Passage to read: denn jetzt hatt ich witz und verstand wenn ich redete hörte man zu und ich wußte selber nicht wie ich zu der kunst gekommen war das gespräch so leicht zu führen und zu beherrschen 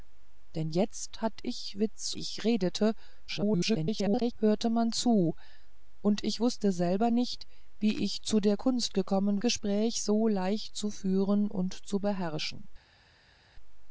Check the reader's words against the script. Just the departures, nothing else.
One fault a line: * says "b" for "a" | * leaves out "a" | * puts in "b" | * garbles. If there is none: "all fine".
* leaves out "und verstand wenn"
* garbles
* leaves out "war das"